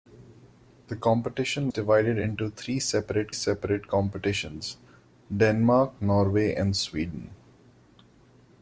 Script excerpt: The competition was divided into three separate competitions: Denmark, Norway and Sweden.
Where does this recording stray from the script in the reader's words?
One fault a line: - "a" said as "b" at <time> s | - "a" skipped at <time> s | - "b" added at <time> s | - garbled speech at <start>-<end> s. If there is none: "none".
- "was" skipped at 1.7 s
- "separate" added at 3.3 s